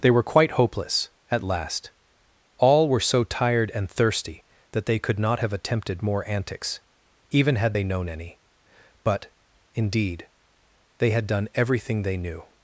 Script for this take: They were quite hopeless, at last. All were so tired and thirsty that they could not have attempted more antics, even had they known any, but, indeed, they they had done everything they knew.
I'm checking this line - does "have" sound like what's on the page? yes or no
yes